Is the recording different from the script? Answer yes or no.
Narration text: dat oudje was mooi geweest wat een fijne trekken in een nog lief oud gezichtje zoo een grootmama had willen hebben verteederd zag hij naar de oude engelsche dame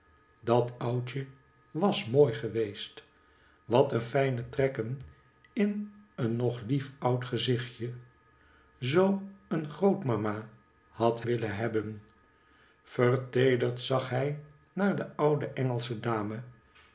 no